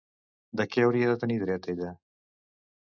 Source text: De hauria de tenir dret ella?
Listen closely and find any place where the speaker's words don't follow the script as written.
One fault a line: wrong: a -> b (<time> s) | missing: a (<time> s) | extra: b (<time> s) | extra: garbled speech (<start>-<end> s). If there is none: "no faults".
extra: què (0.7 s)